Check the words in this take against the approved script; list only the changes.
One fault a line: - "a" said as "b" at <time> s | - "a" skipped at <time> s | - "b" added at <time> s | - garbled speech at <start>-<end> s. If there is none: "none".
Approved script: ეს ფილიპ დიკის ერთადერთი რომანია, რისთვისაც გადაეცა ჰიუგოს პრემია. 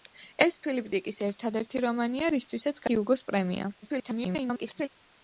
- "გადაეცა" skipped at 2.8 s
- garbled speech at 3.8-4.9 s